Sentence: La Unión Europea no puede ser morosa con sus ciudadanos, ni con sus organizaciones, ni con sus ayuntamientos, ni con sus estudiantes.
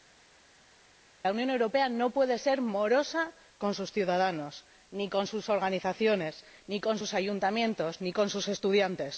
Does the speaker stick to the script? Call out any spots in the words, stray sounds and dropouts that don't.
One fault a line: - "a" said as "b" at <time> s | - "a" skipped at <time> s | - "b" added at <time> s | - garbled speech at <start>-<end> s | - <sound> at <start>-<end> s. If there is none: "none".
none